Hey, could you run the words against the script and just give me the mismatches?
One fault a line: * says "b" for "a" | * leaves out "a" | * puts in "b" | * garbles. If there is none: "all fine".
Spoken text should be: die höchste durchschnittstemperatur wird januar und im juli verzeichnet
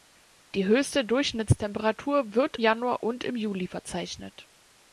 all fine